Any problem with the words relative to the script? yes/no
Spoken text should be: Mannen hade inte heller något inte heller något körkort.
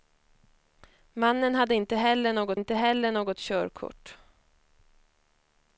no